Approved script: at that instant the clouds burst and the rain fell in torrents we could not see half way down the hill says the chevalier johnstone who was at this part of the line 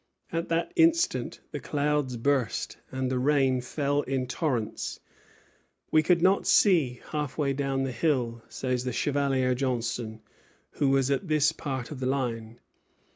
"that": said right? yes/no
yes